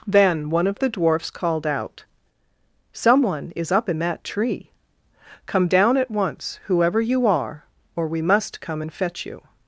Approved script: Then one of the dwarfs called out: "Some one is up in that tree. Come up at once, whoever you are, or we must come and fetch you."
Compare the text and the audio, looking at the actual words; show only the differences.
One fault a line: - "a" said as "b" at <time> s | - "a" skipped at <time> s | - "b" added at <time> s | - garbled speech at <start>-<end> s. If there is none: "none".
- "up" said as "down" at 5.7 s